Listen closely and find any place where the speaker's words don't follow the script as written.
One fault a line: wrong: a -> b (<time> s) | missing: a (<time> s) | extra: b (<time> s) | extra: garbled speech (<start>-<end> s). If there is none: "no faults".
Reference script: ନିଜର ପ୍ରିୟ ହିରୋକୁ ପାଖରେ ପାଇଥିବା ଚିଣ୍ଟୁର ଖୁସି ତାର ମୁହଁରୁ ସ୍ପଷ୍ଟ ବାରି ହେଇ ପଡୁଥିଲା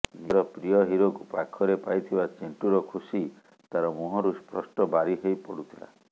no faults